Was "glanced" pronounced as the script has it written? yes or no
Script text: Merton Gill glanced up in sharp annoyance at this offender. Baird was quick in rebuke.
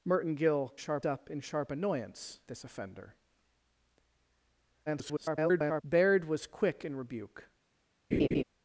no